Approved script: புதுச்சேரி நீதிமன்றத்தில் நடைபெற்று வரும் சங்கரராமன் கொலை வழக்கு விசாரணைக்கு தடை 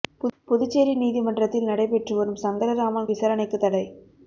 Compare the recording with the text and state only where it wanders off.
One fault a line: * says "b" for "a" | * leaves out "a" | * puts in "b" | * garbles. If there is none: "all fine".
* leaves out "கொலை வழக்கு"